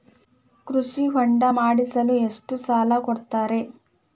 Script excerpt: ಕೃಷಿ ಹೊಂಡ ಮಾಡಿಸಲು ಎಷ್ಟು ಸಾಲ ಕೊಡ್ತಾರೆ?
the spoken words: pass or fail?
pass